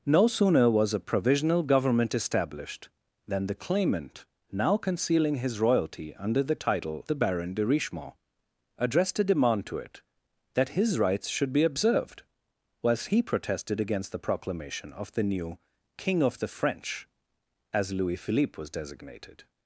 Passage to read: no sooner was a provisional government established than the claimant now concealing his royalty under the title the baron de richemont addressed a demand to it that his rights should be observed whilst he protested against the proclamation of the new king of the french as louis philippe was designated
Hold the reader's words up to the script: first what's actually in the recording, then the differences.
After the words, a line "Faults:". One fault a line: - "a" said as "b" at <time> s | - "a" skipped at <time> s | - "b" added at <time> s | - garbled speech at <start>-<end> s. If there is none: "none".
no sooner was a provisional government established than the claimant now concealing his royalty under the title the baron de richemont addressed a demand to it that his rights should be observed whilst he protested against the proclamation of the new king of the french as louis philippe was designated
Faults:
none